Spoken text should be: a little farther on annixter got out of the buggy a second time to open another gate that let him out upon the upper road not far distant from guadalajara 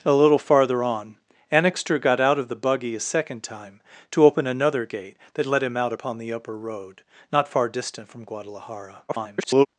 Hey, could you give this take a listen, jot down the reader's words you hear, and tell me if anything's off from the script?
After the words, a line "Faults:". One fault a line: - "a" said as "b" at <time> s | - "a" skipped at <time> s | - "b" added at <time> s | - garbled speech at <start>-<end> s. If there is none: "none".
a little farther on annixter got out of the buggy a second time to open another gate that let him out upon the upper road not far distant from guadalajara [garbled]
Faults:
- garbled speech at 9.1-9.7 s